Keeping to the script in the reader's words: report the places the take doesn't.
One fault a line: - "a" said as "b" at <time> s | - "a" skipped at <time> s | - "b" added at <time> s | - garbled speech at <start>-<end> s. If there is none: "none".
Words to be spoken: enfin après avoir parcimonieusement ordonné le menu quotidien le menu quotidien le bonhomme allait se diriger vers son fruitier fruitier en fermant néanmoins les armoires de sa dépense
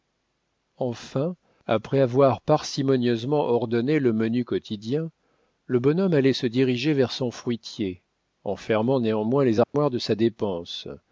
- "menu quotidien le" skipped at 5.8 s
- "fruitier" skipped at 8.0 s